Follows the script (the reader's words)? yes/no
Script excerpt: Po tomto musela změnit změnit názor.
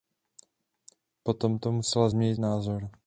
no